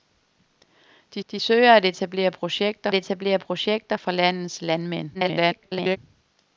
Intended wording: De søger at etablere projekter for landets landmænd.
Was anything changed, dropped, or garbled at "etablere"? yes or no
no